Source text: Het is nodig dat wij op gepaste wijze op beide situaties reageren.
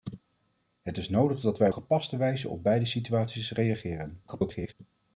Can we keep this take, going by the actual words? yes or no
no